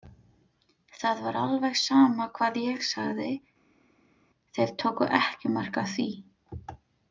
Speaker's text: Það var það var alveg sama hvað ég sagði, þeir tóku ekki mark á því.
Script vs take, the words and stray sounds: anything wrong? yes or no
yes